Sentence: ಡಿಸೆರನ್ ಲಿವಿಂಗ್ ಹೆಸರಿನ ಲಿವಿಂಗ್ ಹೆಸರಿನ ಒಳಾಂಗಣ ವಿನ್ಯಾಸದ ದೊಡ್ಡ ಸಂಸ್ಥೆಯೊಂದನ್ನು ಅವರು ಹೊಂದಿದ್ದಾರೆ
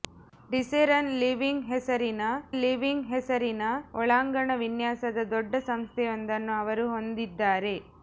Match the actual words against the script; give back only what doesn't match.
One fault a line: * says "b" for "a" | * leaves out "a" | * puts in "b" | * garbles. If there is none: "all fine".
all fine